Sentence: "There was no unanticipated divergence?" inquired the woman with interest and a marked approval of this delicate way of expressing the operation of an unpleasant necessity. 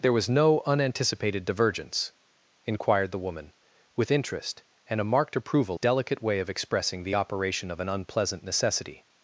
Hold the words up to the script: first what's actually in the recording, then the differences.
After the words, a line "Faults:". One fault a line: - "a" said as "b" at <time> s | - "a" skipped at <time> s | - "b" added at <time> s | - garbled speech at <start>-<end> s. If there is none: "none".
"There was no unanticipated divergence?" inquired the woman with interest and a marked approval delicate way of expressing the operation of an unpleasant necessity.
Faults:
- "of this" skipped at 5.8 s